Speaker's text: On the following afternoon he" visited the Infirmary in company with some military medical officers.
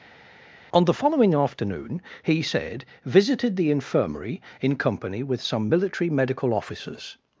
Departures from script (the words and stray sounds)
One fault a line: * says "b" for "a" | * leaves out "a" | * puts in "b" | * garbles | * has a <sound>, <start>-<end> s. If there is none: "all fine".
* puts in "said"